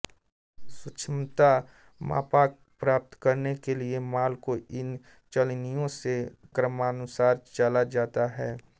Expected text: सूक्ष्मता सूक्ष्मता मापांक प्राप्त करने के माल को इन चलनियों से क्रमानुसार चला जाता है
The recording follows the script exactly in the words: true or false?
false